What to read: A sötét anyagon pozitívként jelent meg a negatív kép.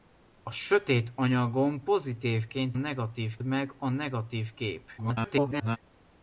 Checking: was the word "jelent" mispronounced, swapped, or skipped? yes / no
yes